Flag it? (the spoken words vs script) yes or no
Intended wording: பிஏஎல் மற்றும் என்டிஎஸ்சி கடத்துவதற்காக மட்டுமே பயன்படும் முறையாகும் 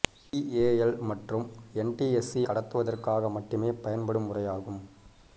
no